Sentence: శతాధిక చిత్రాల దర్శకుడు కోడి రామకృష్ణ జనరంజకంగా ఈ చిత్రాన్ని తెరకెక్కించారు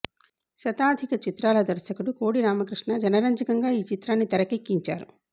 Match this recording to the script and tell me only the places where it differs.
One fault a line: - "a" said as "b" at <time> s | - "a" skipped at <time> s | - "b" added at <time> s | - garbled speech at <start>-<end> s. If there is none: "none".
none